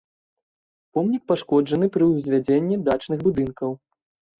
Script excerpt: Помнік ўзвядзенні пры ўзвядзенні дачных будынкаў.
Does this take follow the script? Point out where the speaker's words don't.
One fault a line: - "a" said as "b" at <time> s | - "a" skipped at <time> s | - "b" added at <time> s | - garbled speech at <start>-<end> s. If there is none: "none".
- "ўзвядзенні" said as "пашкоджаны" at 1.3 s